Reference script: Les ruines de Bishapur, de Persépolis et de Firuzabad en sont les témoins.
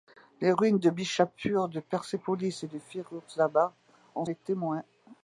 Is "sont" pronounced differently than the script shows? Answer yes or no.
yes